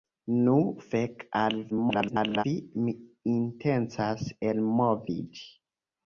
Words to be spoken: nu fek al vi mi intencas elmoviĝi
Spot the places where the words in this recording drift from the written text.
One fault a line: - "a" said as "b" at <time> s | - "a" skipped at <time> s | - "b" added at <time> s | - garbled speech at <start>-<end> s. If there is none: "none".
- garbled speech at 1.7-2.4 s